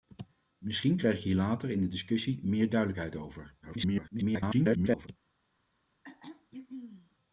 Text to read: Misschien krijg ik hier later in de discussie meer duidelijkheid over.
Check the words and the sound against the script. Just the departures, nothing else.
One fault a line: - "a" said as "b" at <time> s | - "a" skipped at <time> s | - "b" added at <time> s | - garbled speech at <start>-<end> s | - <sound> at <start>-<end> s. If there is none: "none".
- garbled speech at 3.6-5.1 s
- throat clearing at 6.0-7.2 s